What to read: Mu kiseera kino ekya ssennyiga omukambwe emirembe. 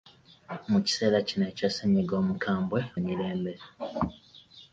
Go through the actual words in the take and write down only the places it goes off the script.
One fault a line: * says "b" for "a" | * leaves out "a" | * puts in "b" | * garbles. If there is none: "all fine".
all fine